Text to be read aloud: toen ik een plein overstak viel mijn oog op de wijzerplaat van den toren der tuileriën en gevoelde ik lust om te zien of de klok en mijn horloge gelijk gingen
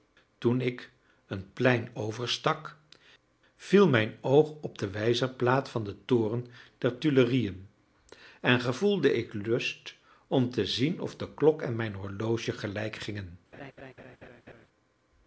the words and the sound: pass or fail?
fail